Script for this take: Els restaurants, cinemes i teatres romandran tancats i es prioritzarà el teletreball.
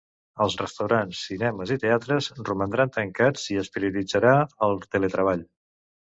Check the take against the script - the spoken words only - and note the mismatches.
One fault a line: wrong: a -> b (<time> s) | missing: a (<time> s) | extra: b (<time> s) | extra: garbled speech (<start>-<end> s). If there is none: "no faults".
no faults